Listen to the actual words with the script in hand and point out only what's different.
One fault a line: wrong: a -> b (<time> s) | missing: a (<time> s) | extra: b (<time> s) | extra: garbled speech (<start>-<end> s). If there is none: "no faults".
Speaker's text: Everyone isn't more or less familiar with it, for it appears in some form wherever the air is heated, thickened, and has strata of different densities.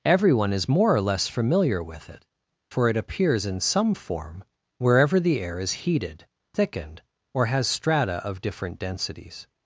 wrong: isn't -> is (0.5 s)
wrong: and -> or (7.3 s)